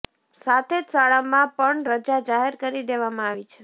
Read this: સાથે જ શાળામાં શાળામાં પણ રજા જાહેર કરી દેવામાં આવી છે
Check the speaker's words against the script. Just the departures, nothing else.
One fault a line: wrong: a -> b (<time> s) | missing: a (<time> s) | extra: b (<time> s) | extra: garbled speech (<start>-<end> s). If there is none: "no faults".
missing: શાળામાં (1.5 s)